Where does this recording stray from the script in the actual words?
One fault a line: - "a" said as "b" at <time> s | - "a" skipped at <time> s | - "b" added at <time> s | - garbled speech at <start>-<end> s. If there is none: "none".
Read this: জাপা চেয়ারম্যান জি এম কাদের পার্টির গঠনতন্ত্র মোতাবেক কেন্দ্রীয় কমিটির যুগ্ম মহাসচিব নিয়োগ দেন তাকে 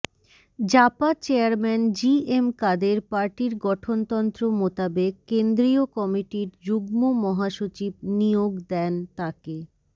none